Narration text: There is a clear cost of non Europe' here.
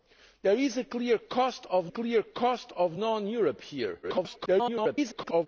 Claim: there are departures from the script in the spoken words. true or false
true